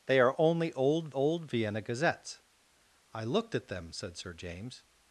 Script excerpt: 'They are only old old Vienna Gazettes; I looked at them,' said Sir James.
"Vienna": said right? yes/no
yes